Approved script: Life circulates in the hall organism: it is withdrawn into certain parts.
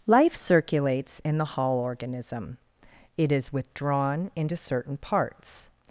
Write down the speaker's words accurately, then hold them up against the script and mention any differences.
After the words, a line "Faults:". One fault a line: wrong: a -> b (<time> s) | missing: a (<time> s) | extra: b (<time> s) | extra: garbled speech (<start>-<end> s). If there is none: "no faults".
Life circulates in the hall organism: it is withdrawn into certain parts.
Faults:
no faults